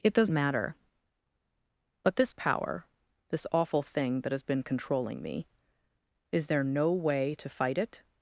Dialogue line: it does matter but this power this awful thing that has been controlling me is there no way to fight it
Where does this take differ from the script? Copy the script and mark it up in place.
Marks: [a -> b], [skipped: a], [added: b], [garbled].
it does matter but this power this awful thing that has been controlling me is there no way to fight it